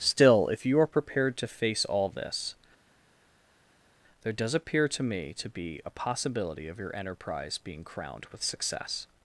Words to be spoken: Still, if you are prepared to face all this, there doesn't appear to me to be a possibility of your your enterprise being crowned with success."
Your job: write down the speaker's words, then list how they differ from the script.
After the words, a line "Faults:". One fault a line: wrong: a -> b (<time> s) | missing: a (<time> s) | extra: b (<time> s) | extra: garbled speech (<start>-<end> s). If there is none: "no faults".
Still, if you are prepared to face all this, there does appear to me to be a possibility of your enterprise being crowned with success."
Faults:
wrong: doesn't -> does (4.3 s)
missing: your (6.9 s)